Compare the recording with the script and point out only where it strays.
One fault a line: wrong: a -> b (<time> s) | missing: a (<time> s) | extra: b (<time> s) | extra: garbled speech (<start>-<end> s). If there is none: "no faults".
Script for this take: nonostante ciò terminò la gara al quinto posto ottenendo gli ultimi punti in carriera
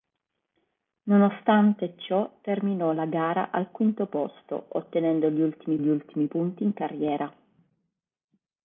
extra: gli ultimi (5.8 s)